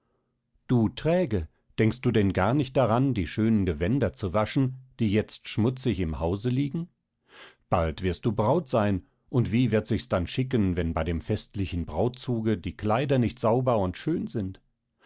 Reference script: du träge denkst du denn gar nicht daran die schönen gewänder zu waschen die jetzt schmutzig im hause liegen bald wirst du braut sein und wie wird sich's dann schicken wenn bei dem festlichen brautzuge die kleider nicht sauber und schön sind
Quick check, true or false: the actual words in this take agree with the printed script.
true